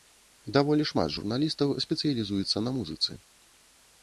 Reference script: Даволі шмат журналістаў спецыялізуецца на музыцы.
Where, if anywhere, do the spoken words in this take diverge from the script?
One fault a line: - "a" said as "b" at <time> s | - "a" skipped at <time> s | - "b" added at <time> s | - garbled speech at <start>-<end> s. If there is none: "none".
none